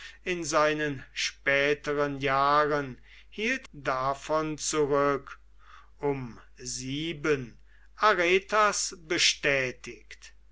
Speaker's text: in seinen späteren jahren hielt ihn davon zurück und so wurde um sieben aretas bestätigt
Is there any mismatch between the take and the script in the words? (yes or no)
yes